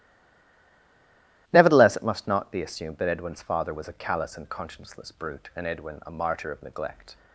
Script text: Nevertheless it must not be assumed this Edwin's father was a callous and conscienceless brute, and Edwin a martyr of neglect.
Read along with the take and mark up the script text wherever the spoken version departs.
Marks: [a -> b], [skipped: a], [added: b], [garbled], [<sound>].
Nevertheless it must not be assumed [this -> that] Edwin's father was a callous and conscienceless brute, and Edwin a martyr of neglect.